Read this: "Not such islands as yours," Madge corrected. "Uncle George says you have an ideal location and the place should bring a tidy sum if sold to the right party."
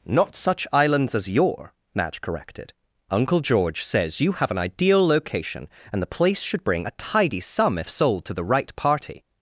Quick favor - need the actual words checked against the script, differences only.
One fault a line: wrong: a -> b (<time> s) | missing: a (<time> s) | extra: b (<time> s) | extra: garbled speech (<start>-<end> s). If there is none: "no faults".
wrong: yours -> your (1.3 s)